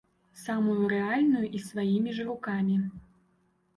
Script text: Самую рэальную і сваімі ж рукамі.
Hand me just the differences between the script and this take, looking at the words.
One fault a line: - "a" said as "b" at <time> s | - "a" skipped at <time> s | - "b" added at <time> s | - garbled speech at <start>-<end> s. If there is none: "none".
none